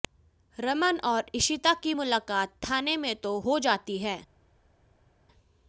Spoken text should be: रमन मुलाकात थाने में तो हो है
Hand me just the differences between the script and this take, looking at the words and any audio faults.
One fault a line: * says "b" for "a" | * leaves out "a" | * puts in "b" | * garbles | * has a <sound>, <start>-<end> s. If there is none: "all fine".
* puts in "और इशिता की"
* puts in "जाती"